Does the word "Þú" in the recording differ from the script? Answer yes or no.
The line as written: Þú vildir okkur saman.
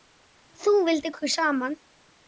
no